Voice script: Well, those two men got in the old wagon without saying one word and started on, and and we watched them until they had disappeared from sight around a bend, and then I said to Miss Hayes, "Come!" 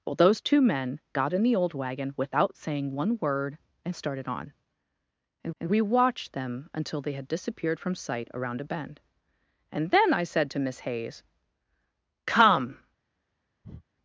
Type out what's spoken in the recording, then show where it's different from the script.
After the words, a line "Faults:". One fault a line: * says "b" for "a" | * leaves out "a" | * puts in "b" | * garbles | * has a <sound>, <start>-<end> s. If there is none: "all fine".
Well, those two men got in the old wagon without saying one word and started on, and and we watched them until they had disappeared from sight around a bend, and then I said to Miss Hayes, "Come!"
Faults:
* has a breath, 13.6-13.8 s